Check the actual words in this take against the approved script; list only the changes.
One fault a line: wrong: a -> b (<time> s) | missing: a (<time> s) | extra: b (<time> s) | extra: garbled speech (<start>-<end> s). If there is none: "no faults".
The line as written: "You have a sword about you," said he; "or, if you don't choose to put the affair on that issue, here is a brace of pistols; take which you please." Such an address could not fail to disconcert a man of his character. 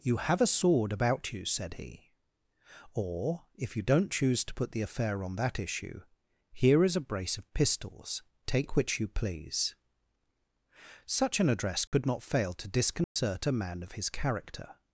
no faults